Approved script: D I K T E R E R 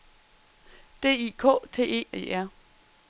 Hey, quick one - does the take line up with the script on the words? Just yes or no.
no